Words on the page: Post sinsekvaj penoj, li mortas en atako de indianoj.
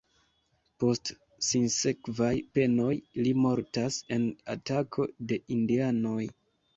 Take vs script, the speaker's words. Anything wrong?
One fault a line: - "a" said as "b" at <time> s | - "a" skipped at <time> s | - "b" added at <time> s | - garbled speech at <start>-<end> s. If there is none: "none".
none